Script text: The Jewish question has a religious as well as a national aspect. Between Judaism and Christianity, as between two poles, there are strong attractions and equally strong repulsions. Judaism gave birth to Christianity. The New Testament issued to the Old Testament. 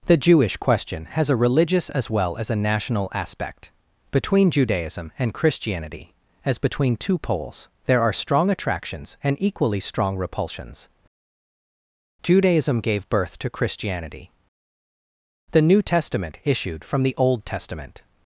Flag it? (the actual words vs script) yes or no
yes